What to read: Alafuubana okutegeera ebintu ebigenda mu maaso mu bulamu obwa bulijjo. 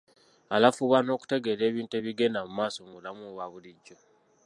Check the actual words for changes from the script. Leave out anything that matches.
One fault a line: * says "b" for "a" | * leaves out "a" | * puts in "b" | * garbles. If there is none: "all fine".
all fine